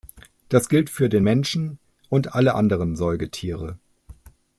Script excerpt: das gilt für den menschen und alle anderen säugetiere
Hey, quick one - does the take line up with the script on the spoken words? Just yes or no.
yes